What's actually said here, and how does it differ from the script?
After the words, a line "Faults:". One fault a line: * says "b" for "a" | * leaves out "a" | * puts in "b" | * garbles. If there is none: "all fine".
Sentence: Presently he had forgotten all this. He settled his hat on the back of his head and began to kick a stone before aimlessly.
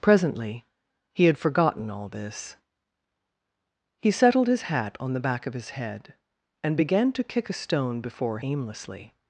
Presently he had forgotten all this. He settled his hat on the back of his head and began to kick a stone before aimlessly.
Faults:
all fine